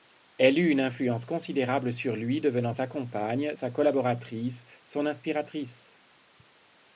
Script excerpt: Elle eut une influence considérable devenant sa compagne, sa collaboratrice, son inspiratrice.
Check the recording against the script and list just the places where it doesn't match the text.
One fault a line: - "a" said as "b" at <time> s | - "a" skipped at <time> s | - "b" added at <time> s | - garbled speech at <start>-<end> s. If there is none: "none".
- "sur lui" added at 1.9 s